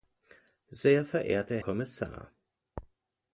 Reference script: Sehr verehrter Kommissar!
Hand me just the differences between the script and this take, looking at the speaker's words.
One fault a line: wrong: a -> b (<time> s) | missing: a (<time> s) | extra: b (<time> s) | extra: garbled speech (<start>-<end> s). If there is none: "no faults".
no faults